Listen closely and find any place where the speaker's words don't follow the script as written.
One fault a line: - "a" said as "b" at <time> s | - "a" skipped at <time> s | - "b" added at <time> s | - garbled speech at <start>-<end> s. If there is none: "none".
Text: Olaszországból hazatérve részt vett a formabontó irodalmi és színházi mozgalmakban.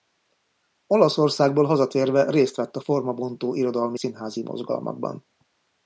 - "és" skipped at 4.0 s